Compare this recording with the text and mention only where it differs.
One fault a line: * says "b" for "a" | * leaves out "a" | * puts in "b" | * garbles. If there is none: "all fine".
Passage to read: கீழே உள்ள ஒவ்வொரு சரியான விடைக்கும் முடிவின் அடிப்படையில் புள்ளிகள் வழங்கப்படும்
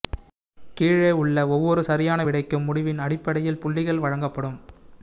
all fine